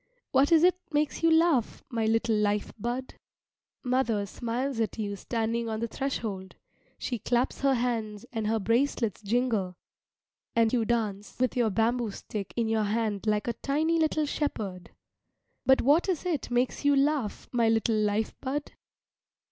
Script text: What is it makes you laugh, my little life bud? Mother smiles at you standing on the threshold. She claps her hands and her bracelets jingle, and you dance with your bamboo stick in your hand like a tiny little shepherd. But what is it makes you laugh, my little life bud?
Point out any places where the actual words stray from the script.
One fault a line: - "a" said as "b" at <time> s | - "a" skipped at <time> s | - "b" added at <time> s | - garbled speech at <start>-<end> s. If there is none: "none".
none